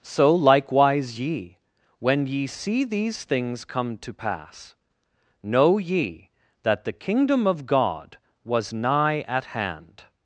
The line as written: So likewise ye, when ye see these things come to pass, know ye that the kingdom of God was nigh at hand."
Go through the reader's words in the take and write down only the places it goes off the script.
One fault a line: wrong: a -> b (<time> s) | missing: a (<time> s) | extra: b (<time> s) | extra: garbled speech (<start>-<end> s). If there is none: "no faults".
no faults